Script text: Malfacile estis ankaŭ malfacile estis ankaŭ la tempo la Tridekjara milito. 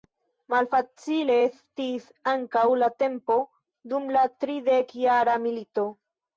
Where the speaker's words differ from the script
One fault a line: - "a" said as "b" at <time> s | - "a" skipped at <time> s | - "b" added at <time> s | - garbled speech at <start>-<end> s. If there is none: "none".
- "malfacile estis ankaŭ" skipped at 2.6 s
- "dum" added at 4.0 s